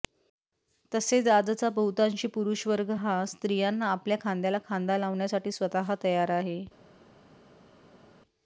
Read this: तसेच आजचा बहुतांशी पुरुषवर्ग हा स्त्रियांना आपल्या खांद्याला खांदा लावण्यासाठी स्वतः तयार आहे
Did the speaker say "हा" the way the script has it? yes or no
yes